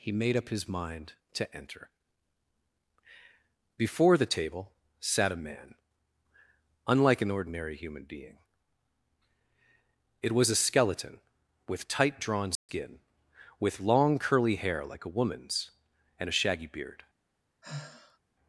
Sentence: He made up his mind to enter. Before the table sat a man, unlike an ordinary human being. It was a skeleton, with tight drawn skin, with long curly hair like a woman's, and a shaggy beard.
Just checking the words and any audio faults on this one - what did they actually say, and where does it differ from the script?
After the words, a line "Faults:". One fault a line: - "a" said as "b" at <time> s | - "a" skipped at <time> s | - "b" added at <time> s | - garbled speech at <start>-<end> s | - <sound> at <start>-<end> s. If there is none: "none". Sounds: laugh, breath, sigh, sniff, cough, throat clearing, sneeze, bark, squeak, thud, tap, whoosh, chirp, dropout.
He made up his mind to enter. Before the table sat a man, unlike an ordinary human being. It was a skeleton, with tight drawn skin, with long curly hair like a woman's, and a shaggy beard.
Faults:
- dropout at 12.6-12.7 s
- sigh at 17.6-18.2 s